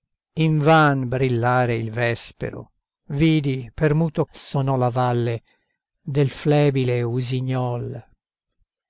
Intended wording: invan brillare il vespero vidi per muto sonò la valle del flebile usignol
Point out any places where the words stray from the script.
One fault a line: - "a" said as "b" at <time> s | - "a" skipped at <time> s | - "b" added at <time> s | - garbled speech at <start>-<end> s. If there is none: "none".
none